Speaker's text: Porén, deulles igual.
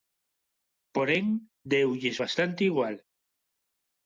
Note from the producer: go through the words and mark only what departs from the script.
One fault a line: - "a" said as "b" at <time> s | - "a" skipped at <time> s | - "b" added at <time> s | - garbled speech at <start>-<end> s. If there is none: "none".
- "bastante" added at 2.2 s